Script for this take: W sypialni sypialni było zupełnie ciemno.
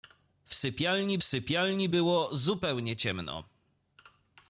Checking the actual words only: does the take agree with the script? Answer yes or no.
yes